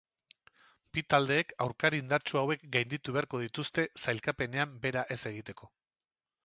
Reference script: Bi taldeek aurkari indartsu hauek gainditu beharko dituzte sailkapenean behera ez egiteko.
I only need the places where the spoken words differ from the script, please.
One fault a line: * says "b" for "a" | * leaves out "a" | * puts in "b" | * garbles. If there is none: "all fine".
all fine